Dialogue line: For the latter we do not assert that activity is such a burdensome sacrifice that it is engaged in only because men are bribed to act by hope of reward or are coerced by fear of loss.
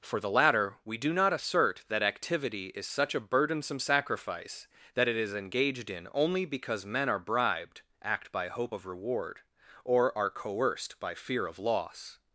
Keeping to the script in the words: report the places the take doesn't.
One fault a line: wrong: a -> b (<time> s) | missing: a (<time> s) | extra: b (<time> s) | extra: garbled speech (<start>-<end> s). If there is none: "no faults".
missing: to (7.8 s)